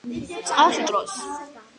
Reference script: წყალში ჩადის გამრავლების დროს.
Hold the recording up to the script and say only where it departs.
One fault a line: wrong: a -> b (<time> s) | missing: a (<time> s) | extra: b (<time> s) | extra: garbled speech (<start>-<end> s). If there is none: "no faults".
missing: ჩადის გამრავლების (0.8 s)